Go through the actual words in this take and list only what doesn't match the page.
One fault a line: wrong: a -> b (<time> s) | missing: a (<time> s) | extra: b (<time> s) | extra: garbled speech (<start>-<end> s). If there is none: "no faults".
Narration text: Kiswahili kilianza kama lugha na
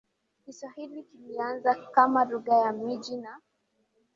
extra: ya miji (2.6 s)